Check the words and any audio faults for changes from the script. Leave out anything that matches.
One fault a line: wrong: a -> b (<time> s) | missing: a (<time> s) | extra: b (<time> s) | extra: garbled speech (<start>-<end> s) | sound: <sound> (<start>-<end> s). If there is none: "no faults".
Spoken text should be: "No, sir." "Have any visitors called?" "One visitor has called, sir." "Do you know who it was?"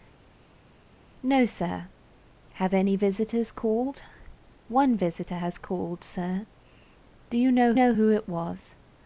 extra: know (7.7 s)